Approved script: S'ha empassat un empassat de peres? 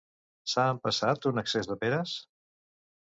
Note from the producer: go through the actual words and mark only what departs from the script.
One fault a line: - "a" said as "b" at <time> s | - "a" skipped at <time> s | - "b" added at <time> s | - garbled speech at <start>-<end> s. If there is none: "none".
- "empassat" said as "excés" at 1.4 s